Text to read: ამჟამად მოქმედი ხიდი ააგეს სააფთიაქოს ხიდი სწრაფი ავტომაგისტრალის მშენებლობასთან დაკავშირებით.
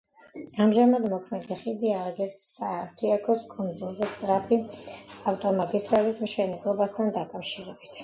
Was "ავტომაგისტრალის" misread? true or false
false